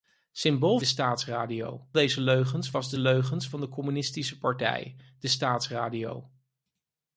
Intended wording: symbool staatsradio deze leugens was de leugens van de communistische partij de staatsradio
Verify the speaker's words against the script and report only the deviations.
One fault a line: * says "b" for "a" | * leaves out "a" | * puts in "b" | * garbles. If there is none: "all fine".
all fine